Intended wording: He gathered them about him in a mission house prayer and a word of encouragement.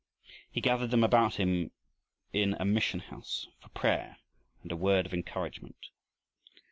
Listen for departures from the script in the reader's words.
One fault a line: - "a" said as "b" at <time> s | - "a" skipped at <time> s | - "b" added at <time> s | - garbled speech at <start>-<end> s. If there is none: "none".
- "for" added at 3.6 s